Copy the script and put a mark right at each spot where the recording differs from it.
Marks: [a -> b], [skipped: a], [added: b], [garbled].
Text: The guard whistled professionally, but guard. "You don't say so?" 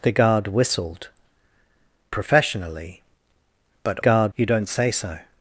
The guard whistled professionally, but guard. "You don't say so?"